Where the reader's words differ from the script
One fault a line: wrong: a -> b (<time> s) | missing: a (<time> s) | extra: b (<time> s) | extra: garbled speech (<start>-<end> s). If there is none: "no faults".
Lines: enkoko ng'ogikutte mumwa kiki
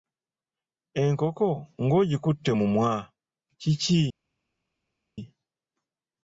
no faults